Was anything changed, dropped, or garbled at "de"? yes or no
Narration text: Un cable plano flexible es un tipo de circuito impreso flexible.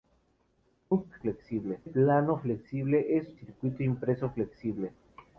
yes